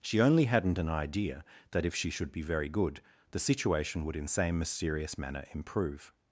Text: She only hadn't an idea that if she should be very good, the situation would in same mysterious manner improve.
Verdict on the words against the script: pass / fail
pass